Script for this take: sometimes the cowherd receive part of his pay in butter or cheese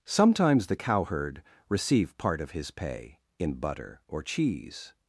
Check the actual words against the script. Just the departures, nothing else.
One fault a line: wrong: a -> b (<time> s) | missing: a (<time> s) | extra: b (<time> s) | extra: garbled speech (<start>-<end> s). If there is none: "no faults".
no faults